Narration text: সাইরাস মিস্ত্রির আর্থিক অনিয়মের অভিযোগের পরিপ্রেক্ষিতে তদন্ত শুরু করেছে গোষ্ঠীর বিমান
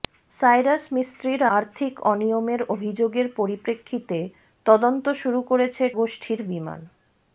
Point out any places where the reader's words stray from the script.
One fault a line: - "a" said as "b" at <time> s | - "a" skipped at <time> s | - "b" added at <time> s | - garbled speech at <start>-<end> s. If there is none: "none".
none